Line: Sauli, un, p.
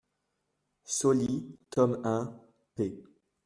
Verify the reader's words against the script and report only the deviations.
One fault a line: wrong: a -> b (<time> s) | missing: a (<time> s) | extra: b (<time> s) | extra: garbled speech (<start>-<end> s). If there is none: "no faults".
extra: tome (1.7 s)